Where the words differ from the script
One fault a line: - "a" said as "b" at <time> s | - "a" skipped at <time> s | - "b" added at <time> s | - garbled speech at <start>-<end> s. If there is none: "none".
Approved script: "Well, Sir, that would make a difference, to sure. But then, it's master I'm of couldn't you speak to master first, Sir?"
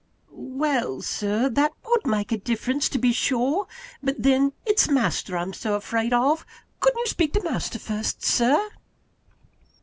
- "be" added at 3.0 s
- "so afraid" added at 5.5 s